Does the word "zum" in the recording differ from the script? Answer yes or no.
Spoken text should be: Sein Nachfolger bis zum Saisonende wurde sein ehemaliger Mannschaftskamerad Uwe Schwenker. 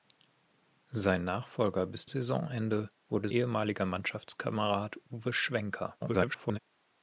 yes